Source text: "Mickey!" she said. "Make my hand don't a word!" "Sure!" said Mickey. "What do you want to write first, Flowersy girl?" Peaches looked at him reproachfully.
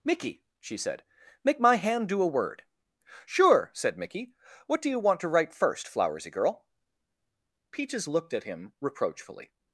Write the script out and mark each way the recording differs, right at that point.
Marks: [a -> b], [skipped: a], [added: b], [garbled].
"Mickey!" she said. "Make my hand [don't -> do] a word!" "Sure!" said Mickey. "What do you want to write first, Flowersy girl?" Peaches looked at him reproachfully.